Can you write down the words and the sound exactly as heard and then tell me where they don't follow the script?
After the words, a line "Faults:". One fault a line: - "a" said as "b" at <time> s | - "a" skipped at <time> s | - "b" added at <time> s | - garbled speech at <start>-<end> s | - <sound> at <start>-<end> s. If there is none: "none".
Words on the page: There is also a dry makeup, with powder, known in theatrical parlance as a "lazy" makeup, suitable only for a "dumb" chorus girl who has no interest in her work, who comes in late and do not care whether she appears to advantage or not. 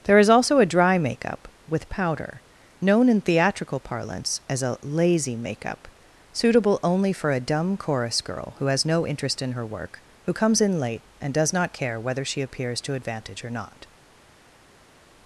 There is also a dry makeup, with powder, known in theatrical parlance as a "lazy" makeup, suitable only for a "dumb" chorus girl who has no interest in her work, who comes in late and does not care whether she appears to advantage or not.
Faults:
- "do" said as "does" at 11.3 s